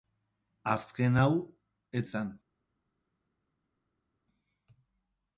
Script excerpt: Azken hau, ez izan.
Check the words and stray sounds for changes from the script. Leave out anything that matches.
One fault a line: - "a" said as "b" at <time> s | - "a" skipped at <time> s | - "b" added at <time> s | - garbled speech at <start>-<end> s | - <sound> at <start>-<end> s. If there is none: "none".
none